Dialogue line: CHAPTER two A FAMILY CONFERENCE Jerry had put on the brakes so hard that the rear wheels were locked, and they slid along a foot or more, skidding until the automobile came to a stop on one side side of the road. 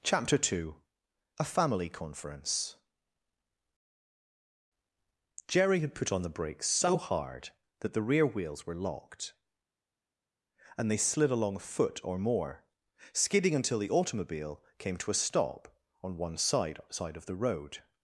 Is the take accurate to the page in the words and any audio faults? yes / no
yes